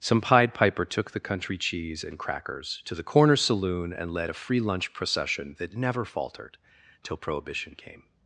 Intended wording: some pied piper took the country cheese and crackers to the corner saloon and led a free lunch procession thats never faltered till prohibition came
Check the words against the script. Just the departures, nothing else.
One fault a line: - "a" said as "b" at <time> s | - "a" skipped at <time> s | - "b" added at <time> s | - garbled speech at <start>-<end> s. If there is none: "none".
- "thats" said as "that" at 5.6 s